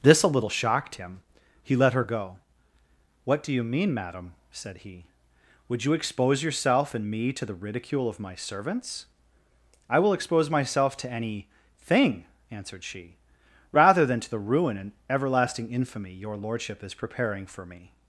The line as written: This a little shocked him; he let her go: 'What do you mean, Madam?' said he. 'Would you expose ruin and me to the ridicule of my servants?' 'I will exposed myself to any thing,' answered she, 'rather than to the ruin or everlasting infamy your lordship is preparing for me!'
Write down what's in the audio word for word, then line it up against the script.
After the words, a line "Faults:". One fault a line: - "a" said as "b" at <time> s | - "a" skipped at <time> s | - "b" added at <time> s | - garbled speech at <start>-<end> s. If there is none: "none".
This a little shocked him; he let her go: 'What do you mean, Madam?' said he. 'Would you expose yourself and me to the ridicule of my servants?' 'I will expose myself to any thing,' answered she, 'rather than to the ruin and everlasting infamy your lordship is preparing for me!'
Faults:
- "ruin" said as "yourself" at 6.4 s
- "exposed" said as "expose" at 10.1 s
- "or" said as "and" at 14.8 s